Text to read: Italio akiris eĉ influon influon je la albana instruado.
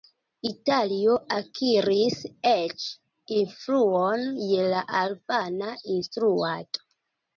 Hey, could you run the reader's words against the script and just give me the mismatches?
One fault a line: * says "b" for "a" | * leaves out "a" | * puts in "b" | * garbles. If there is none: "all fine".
* leaves out "influon"